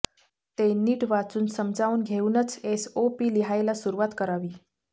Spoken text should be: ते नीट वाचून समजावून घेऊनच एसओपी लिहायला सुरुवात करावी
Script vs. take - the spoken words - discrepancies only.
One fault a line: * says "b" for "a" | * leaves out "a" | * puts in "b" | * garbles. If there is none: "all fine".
all fine